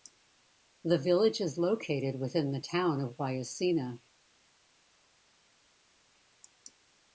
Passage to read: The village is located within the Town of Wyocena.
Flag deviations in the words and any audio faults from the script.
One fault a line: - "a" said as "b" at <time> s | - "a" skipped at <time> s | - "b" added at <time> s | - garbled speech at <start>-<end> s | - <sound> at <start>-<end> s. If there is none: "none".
none